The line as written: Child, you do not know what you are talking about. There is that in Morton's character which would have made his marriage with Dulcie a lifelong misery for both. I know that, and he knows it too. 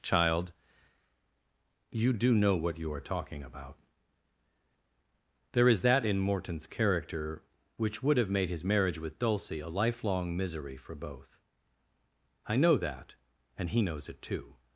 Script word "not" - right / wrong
wrong